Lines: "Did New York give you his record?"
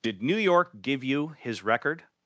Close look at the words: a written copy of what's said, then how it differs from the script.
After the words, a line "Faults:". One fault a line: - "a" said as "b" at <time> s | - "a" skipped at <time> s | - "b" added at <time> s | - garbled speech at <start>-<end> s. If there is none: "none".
"Did New York give you his record?"
Faults:
none